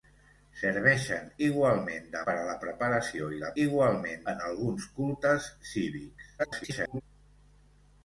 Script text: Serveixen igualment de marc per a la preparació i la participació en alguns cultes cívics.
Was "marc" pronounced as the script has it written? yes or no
no